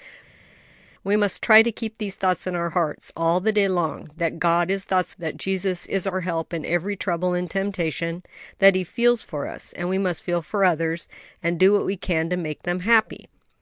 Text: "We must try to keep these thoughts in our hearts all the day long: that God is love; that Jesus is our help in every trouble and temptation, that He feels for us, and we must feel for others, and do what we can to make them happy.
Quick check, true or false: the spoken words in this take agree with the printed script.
false